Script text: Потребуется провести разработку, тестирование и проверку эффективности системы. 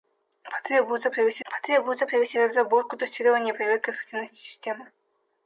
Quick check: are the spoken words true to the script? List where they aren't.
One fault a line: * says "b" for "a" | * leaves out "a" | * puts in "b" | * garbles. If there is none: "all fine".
* puts in "потребуется провести"